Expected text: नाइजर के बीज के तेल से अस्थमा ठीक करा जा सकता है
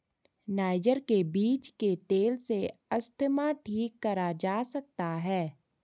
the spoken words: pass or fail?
pass